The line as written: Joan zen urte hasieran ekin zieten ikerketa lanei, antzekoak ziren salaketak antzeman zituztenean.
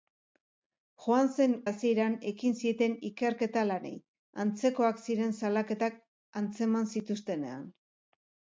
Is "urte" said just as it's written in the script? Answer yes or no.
no